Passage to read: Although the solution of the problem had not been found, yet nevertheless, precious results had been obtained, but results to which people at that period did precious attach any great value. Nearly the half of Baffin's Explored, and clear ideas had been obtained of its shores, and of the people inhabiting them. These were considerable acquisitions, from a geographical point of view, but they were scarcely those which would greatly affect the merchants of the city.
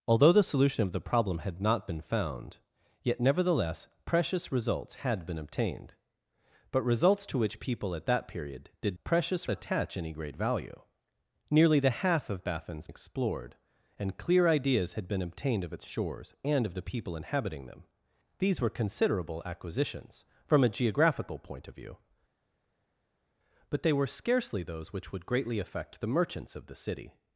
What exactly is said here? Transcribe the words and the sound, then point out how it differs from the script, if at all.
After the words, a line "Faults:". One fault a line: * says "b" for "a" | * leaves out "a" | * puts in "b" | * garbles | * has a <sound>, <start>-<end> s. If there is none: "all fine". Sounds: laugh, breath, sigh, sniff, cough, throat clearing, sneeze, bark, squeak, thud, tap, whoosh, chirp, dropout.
Although the solution of the problem had not been found, yet nevertheless, precious results had been obtained, but results to which people at that period did precious attach any great value. Nearly the half of Baffin's Explored, and clear ideas had been obtained of its shores, and of the people inhabiting them. These were considerable acquisitions, from a geographical point of view, but they were scarcely those which would greatly affect the merchants of the city.
Faults:
all fine